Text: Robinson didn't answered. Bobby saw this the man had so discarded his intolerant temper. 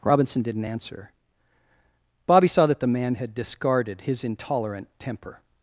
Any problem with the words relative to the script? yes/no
yes